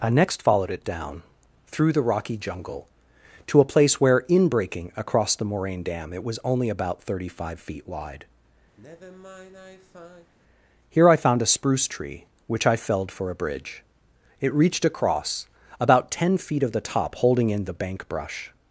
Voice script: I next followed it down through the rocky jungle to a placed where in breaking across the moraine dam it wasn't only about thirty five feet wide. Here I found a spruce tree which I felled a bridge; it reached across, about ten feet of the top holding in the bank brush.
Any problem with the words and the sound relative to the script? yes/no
yes